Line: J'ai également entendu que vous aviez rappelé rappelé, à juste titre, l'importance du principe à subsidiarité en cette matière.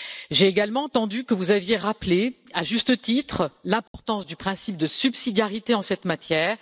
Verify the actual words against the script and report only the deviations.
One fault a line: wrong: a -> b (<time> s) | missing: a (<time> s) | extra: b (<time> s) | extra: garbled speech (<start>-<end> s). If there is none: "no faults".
missing: rappelé (2.4 s)
wrong: à -> de (4.8 s)